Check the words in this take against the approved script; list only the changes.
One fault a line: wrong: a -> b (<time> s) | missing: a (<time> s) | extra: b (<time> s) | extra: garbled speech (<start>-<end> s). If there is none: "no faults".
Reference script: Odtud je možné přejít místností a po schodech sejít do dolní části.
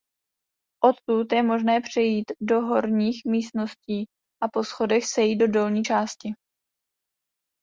extra: do horních (2.4 s)